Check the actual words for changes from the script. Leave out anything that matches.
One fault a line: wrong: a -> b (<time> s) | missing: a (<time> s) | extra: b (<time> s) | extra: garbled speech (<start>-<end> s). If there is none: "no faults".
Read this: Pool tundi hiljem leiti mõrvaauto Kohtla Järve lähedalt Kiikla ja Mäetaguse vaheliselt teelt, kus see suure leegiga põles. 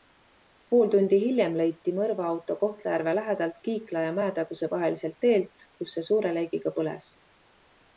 no faults